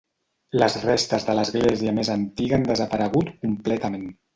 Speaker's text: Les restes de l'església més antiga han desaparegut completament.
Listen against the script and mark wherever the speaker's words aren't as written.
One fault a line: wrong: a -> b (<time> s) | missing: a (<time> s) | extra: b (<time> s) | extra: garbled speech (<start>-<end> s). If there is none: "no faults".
no faults